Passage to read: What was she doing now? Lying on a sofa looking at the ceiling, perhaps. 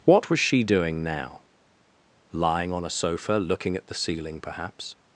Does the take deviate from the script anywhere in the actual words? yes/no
no